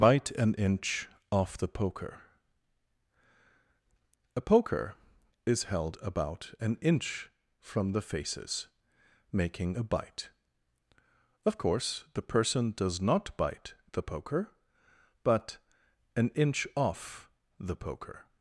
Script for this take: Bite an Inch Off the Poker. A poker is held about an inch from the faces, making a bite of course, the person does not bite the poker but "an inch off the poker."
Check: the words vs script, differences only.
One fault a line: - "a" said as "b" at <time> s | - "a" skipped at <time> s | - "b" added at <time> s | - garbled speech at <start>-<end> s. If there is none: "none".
none